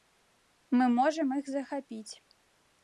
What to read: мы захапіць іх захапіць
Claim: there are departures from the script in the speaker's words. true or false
true